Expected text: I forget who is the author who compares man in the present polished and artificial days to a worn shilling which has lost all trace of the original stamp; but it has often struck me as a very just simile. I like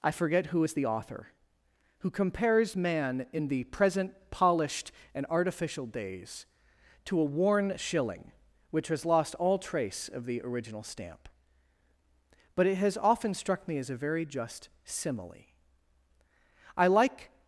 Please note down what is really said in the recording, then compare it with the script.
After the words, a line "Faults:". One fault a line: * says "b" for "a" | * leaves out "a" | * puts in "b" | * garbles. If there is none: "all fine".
I forget who is the author who compares man in the present polished and artificial days to a worn shilling which has lost all trace of the original stamp; but it has often struck me as a very just simile. I like
Faults:
all fine